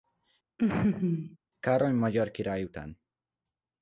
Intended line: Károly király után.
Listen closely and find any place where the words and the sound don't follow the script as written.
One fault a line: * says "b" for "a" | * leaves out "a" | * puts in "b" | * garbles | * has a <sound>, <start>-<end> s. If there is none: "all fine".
* has a laugh, 0.6-1.4 s
* puts in "magyar"